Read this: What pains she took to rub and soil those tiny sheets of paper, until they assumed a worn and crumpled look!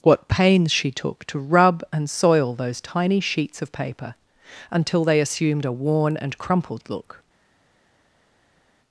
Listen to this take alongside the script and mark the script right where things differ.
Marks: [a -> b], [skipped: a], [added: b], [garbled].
What pains she took to rub and soil those tiny sheets of paper, until they assumed a worn and crumpled look!